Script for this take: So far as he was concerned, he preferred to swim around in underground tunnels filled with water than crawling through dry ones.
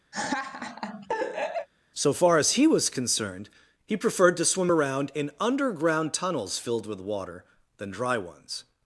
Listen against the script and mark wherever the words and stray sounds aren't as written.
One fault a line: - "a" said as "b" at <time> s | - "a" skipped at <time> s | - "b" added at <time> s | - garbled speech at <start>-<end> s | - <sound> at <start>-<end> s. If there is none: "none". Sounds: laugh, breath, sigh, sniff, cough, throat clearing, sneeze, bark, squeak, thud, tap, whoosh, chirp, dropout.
- laugh at 0.1-1.7 s
- "crawling through" skipped at 7.9 s